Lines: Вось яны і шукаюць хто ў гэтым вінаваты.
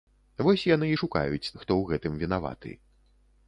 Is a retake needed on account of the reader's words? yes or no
no